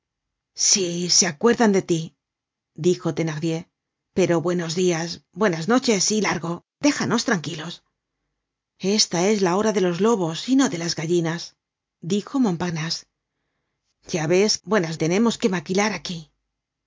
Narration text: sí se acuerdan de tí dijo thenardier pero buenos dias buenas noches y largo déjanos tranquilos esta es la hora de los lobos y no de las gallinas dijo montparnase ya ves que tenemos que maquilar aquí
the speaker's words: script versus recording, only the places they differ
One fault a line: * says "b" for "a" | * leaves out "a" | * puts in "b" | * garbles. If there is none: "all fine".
* says "buenas" for "que"